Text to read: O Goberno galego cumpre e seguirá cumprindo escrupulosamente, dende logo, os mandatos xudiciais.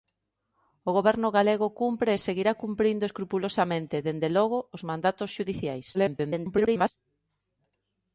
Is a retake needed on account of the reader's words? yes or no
yes